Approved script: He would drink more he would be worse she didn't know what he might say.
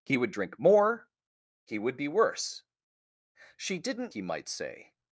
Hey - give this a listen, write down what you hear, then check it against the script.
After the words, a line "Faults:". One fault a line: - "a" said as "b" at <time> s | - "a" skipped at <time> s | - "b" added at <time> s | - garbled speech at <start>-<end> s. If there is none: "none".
He would drink more he would be worse she didn't he might say.
Faults:
- "know what" skipped at 4.1 s